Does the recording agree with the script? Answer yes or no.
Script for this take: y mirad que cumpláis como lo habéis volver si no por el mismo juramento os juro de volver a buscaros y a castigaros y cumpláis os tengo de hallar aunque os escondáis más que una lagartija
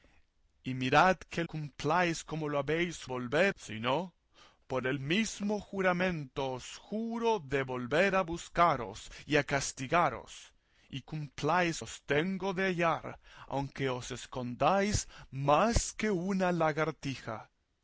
yes